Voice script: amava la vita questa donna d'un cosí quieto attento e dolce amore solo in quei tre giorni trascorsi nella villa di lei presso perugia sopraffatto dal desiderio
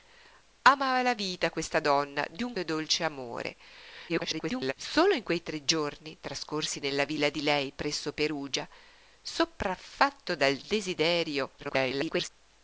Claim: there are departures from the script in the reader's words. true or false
true